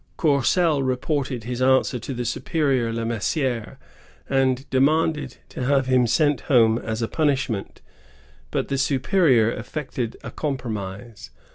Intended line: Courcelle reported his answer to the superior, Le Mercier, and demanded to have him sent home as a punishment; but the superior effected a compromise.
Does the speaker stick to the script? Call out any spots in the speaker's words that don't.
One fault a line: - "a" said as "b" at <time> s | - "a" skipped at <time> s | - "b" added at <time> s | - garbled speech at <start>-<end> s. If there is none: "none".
none